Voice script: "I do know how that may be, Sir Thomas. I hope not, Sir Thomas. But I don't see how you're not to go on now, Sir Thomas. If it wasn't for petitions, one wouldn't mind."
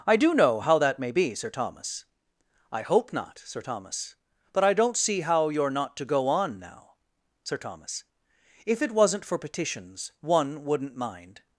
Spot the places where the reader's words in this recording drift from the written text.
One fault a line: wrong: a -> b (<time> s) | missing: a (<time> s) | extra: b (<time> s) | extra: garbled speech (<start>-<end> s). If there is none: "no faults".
no faults